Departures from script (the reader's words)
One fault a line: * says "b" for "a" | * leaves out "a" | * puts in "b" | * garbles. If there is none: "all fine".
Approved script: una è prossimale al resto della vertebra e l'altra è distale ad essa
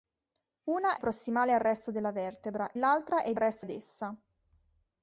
* leaves out "è"
* leaves out "e"
* says "resto" for "distale"